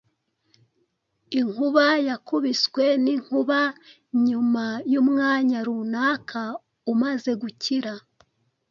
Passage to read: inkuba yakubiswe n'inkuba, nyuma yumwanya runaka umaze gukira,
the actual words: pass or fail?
pass